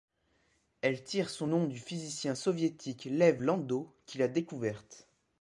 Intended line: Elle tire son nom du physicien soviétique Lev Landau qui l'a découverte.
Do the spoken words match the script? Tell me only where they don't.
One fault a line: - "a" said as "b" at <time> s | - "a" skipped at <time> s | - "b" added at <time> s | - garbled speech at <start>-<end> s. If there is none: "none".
none